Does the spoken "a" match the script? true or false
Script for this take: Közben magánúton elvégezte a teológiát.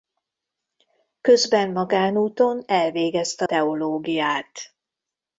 false